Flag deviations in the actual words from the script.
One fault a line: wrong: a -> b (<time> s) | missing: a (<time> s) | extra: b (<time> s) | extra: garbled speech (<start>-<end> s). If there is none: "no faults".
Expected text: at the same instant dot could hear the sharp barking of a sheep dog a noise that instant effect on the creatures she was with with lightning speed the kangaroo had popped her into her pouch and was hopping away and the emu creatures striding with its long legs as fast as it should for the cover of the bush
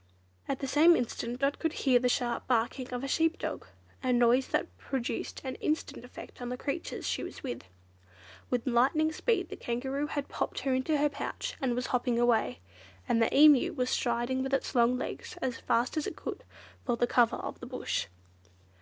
extra: produced an (4.8 s)
wrong: creatures -> was (13.7 s)
wrong: should -> could (16.1 s)